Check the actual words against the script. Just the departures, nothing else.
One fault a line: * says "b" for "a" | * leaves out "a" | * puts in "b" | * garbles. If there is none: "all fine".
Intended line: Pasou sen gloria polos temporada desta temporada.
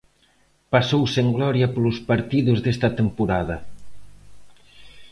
* says "partidos" for "temporada"